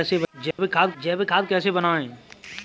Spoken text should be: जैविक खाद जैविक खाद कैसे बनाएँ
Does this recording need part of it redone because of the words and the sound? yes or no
yes